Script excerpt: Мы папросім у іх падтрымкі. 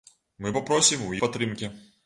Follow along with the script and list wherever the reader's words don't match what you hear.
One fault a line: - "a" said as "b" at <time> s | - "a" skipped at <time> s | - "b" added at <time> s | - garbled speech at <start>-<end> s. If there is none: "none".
- "іх" skipped at 1.1 s